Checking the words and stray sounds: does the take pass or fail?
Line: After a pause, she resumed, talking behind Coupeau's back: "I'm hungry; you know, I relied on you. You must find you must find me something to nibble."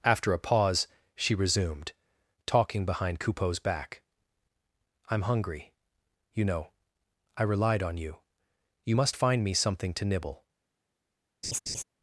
fail